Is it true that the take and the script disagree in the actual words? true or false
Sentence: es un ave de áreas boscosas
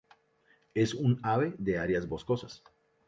false